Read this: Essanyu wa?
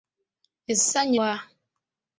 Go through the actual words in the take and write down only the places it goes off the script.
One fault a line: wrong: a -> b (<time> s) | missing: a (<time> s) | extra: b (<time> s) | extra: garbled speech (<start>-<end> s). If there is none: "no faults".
no faults